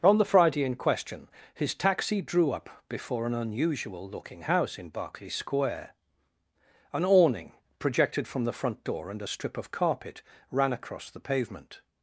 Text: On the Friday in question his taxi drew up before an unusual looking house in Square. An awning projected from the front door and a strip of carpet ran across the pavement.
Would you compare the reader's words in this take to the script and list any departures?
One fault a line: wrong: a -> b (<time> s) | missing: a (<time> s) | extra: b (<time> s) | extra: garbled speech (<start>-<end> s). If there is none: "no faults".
extra: Berkeley (4.9 s)